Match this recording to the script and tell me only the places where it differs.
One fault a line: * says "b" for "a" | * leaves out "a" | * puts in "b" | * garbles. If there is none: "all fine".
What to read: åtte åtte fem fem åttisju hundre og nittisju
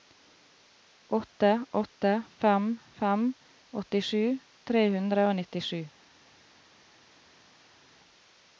* puts in "tre"